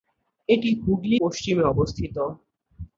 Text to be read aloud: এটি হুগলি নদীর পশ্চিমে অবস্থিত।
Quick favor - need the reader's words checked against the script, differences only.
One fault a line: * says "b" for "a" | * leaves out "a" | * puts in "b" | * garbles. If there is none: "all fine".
* leaves out "নদীর"